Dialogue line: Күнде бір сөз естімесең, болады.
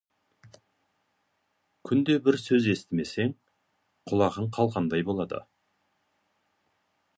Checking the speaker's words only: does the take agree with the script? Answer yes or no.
no